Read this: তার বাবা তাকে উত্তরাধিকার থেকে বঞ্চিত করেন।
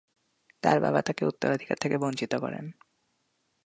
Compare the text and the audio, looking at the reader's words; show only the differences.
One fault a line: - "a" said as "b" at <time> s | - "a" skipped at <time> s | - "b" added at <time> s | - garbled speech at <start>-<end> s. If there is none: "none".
none